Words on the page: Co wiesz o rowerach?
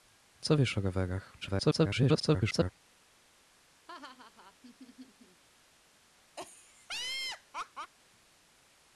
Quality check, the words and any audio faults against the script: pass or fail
fail